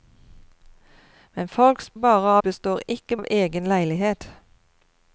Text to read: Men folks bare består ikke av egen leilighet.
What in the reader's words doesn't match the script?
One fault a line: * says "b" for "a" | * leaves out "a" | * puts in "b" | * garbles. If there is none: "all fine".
all fine